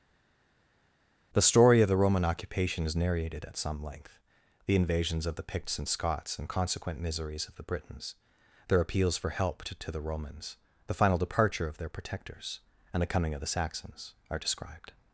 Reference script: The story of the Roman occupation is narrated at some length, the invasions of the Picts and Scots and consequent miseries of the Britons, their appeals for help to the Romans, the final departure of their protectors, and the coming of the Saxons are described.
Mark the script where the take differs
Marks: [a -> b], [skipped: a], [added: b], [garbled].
The story of the Roman occupation is narrated at some length, the invasions of the Picts and Scots and consequent miseries of the Britons, their appeals for help to [added: to] the Romans, the final departure of their protectors, and the coming of the Saxons are described.